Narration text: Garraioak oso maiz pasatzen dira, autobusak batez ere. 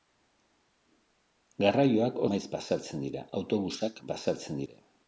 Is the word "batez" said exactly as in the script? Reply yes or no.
no